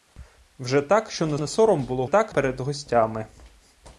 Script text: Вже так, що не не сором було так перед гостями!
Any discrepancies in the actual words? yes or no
no